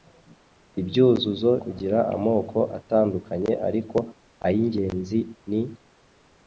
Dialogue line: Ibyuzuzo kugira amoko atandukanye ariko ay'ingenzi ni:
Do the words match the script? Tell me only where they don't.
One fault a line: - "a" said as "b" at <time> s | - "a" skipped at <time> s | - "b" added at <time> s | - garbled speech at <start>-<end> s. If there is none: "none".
none